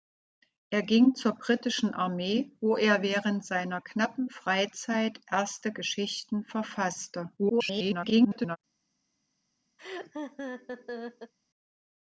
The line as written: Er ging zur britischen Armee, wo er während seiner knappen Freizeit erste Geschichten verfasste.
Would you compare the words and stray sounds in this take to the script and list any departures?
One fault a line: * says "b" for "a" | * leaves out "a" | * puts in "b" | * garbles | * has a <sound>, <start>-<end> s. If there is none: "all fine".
* garbles
* has a laugh, 9.8-11.3 s